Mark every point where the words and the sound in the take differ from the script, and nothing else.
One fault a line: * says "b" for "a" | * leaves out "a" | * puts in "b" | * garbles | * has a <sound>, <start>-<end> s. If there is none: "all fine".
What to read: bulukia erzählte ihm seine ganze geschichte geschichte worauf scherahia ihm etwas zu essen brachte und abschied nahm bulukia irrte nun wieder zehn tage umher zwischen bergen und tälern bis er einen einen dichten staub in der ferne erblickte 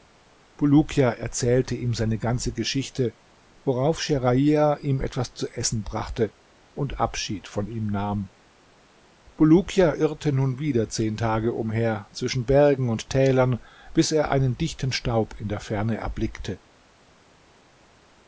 * leaves out "geschichte"
* puts in "von ihm"
* leaves out "einen"